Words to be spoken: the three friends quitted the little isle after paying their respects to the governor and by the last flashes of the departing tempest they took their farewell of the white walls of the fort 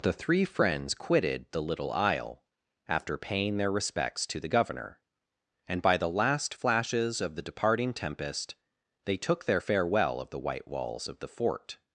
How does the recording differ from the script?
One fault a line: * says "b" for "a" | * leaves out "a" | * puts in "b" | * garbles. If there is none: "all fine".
all fine